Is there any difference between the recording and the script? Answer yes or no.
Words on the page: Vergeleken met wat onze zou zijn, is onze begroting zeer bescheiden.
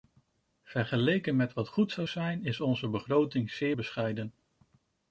yes